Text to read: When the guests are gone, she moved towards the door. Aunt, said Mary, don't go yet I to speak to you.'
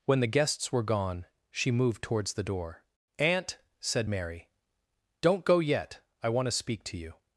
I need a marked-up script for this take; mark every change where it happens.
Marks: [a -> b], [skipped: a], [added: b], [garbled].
When the guests [are -> were] gone, she moved towards the door. Aunt, said Mary, don't go yet I [added: want] to speak to you.'